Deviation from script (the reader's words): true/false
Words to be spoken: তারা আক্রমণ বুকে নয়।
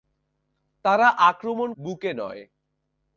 false